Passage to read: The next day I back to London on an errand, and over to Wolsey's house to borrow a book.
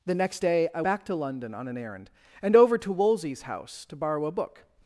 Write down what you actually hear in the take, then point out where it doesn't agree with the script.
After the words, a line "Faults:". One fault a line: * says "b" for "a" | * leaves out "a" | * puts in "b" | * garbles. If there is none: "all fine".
The next day I back to London on an errand, and over to Wolsey's house to borrow a book.
Faults:
all fine